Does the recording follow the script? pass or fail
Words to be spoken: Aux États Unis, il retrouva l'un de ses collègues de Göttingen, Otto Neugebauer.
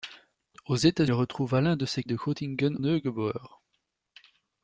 fail